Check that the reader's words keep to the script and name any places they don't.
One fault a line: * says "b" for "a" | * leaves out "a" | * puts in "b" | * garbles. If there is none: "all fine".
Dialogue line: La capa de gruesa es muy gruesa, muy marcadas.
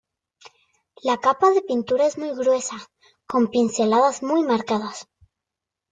* says "pintura" for "gruesa"
* puts in "con pinceladas"